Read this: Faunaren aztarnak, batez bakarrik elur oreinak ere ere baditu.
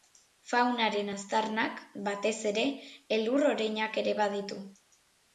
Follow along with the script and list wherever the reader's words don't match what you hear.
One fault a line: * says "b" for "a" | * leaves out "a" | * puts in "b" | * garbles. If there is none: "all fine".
* says "ere" for "bakarrik"
* leaves out "ere"